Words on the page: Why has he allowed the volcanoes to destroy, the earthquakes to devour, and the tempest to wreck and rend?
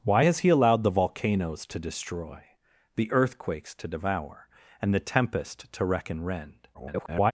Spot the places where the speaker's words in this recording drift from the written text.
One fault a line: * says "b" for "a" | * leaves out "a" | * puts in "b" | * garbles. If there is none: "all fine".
* garbles